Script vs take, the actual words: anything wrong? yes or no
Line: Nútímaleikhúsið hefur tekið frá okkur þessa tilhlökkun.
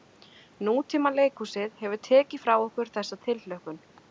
no